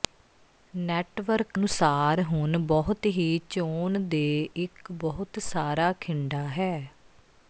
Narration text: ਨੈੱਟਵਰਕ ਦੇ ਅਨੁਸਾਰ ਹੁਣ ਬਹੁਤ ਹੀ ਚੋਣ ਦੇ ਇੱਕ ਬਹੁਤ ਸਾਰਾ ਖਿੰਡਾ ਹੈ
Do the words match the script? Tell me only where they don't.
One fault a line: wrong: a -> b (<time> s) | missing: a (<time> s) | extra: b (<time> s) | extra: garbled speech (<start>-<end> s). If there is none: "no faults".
missing: ਦੇ (1.6 s)